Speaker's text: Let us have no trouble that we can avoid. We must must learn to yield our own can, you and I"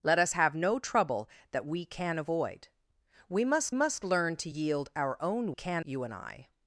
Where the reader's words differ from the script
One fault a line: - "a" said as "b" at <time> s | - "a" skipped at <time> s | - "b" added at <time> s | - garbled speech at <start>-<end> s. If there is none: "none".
none